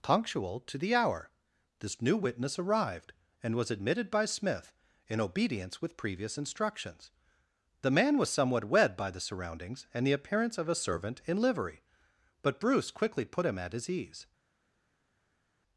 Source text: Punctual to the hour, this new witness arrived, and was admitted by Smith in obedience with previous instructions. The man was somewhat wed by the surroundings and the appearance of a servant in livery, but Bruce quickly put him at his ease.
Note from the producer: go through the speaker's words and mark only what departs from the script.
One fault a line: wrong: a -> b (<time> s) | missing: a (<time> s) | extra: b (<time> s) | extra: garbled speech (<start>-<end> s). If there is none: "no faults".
no faults